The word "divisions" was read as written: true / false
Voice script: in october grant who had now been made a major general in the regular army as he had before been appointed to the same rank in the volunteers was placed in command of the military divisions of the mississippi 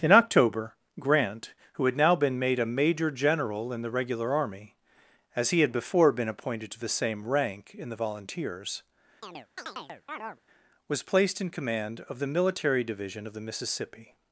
false